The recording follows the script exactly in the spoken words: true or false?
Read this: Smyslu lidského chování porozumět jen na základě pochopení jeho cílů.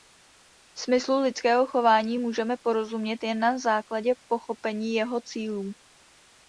false